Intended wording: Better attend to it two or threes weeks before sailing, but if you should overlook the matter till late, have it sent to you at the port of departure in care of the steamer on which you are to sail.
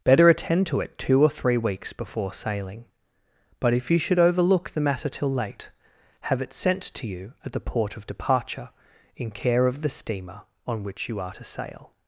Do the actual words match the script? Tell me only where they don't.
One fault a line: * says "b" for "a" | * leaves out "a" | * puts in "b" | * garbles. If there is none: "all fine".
* says "three" for "threes"